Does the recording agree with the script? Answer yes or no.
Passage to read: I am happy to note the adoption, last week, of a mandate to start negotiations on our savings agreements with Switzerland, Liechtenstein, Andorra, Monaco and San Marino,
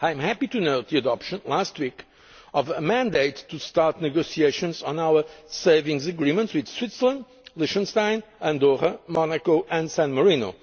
yes